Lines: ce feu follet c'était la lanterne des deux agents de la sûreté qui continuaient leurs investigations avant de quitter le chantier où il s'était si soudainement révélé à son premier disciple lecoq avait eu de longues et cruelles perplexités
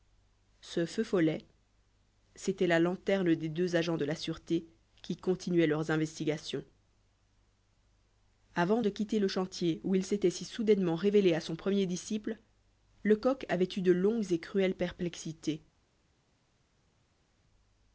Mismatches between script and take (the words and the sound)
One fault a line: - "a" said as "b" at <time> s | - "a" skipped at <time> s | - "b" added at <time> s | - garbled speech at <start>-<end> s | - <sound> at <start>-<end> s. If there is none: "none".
none